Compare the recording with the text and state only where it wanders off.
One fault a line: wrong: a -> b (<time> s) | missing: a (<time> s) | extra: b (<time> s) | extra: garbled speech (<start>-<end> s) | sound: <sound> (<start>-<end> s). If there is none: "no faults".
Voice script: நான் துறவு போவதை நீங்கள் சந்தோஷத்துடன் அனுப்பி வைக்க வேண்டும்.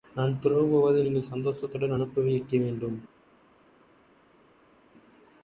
no faults